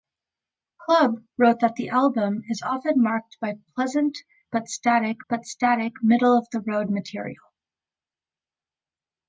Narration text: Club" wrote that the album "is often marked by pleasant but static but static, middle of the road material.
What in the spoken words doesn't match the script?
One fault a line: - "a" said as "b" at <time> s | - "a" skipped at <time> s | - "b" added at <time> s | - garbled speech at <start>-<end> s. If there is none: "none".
none